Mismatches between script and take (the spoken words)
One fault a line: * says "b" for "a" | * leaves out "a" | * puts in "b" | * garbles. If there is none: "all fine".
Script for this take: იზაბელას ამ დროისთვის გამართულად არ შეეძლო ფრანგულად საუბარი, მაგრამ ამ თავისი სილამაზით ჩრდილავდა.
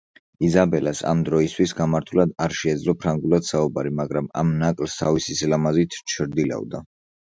* puts in "ნაკლს"